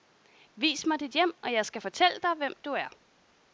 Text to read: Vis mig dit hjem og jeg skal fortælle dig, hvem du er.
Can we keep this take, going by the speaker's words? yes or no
yes